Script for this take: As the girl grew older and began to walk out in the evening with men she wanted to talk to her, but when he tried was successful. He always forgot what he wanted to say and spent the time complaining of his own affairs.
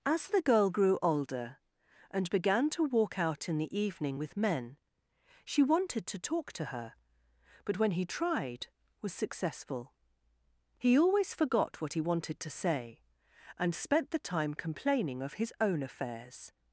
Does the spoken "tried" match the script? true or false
true